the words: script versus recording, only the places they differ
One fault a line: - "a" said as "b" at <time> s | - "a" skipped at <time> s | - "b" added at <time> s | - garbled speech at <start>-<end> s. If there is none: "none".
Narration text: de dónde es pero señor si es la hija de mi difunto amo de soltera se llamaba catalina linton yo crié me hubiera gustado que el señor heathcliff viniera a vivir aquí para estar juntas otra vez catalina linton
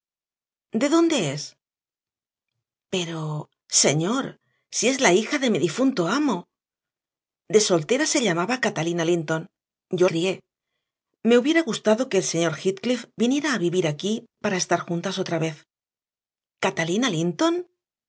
none